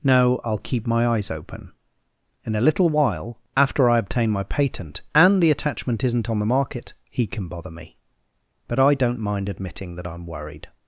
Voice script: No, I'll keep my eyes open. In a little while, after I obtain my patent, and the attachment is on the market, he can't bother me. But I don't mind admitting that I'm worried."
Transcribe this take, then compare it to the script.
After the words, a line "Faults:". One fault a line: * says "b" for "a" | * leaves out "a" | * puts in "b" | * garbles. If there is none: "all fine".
No, I'll keep my eyes open. In a little while, after I obtain my patent, and the attachment isn't on the market, he can bother me. But I don't mind admitting that I'm worried."
Faults:
* says "isn't" for "is"
* says "can" for "can't"